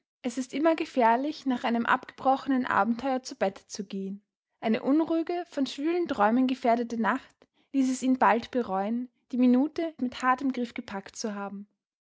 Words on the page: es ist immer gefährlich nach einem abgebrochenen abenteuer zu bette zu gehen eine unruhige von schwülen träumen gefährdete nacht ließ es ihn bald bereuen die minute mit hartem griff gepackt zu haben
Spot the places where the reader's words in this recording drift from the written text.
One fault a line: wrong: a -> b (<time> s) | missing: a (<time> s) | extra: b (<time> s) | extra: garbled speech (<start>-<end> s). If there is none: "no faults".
no faults